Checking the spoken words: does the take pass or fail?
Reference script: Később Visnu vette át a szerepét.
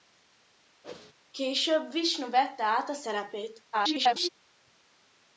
fail